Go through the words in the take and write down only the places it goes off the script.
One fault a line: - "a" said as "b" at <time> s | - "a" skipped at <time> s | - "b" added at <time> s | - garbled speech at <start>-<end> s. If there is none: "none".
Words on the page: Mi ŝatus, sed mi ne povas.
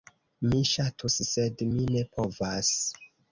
none